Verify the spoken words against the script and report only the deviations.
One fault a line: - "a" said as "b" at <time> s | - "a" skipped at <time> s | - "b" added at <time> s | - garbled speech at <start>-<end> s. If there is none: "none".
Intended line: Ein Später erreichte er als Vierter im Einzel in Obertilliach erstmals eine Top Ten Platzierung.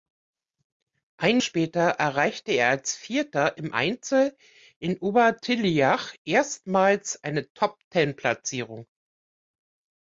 none